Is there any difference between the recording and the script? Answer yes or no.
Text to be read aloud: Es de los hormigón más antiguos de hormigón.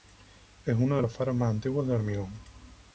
yes